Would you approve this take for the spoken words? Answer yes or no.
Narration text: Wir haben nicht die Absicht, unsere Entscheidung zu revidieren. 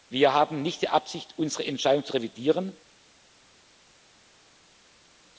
yes